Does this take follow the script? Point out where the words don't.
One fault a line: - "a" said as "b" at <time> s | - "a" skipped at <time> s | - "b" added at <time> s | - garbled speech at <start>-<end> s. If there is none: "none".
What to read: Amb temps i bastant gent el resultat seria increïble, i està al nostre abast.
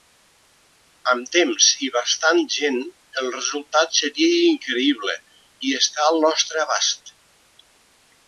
none